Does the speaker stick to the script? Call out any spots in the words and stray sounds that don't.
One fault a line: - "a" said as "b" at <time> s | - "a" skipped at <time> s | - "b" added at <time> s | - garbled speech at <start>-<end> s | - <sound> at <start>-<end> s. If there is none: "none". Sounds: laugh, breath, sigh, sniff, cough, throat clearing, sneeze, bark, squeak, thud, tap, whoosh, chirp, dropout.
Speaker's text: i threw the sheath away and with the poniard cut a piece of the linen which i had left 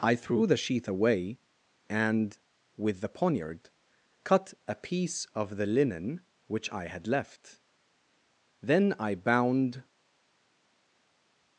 - "then i bound" added at 8.6 s